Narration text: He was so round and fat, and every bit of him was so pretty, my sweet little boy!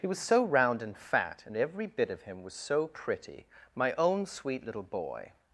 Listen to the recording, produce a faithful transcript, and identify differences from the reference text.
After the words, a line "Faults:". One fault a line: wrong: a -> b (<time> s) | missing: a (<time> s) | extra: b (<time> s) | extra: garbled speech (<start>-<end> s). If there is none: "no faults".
He was so round and fat, and every bit of him was so pretty, my own sweet little boy!
Faults:
extra: own (4.0 s)